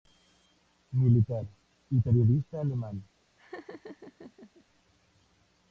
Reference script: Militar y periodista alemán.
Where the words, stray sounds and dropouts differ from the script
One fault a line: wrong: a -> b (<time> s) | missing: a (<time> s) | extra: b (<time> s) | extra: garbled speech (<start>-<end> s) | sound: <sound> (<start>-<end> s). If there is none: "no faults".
sound: laugh (3.4-4.6 s)